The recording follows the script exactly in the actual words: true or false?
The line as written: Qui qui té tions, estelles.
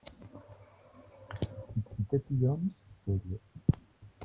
true